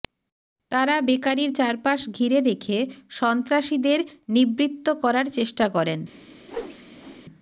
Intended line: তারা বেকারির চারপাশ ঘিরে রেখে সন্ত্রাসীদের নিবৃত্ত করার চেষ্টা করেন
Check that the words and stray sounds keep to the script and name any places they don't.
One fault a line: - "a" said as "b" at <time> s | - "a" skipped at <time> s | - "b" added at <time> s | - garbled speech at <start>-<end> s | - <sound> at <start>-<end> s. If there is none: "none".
- whoosh at 6.4-7.2 s